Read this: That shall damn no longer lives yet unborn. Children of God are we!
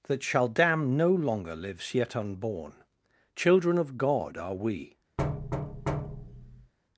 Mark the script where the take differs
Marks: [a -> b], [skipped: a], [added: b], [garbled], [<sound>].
That shall damn no longer lives yet unborn. Children of God are we! [thud]